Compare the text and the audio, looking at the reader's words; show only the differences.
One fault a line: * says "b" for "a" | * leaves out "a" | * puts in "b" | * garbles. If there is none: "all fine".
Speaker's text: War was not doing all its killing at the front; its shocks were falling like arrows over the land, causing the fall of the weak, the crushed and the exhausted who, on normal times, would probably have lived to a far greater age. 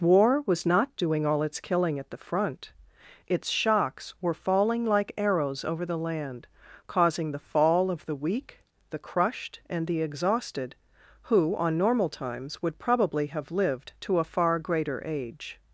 all fine